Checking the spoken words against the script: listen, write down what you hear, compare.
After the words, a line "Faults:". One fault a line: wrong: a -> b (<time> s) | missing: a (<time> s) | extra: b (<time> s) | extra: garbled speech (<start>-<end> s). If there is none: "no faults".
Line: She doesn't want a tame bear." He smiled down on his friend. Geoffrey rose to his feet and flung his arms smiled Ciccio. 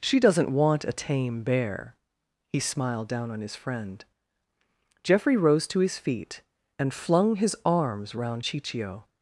She doesn't want a tame bear." He smiled down on his friend. Geoffrey rose to his feet and flung his arms round Ciccio.
Faults:
wrong: smiled -> round (8.1 s)